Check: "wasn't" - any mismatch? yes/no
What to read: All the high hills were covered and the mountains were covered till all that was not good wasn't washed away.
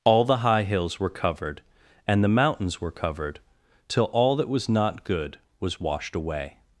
yes